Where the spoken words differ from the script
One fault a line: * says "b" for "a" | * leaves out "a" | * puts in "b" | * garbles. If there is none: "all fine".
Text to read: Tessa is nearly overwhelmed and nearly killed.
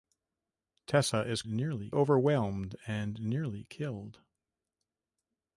all fine